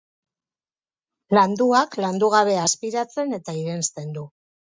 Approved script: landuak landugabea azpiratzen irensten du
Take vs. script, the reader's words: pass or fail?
fail